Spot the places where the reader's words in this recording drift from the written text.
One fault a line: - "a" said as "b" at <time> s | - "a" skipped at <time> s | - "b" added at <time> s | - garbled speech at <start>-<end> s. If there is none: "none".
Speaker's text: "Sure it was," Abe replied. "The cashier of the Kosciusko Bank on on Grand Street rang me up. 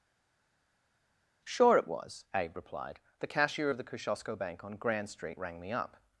- "on" skipped at 4.7 s